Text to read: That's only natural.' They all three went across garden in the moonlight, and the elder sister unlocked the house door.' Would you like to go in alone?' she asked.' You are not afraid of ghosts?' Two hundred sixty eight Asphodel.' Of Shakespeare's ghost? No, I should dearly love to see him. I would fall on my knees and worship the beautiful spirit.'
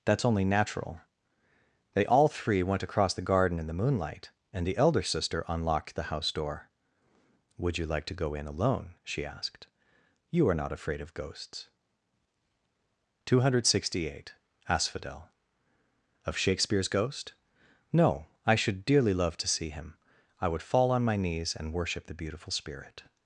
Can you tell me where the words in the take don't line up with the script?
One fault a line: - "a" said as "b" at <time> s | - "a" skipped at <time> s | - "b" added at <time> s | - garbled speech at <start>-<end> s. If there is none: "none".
- "the" added at 3.1 s